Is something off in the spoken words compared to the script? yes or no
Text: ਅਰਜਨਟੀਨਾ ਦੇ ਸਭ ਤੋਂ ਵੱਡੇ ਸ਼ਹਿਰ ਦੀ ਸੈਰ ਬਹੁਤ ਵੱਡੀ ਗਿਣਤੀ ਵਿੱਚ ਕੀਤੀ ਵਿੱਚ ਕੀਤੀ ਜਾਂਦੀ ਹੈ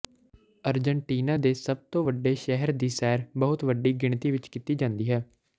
yes